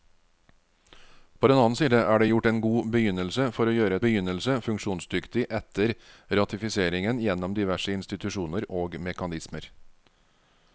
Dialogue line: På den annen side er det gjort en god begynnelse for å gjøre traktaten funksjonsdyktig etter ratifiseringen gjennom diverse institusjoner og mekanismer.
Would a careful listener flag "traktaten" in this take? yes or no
yes